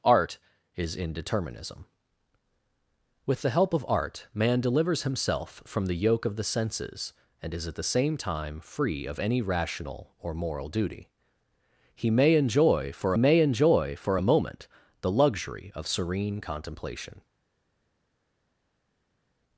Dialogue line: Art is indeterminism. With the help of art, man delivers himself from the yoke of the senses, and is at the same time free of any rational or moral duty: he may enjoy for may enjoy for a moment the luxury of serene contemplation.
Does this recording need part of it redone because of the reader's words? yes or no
no